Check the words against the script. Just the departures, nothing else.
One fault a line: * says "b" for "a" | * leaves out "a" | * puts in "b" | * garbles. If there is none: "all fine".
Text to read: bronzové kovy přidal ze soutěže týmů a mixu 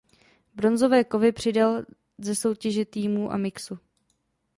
all fine